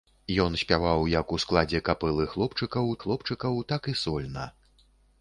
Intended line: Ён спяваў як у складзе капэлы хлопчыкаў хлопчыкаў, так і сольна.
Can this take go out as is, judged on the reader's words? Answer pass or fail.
pass